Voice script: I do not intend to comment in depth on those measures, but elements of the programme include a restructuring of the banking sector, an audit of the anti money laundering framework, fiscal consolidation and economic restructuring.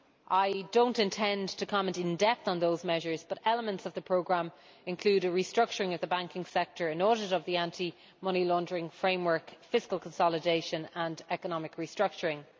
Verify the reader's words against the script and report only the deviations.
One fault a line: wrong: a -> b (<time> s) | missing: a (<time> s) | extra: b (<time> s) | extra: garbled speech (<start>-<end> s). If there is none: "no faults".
no faults